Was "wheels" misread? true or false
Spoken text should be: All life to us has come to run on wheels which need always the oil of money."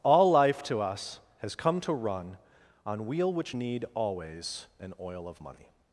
true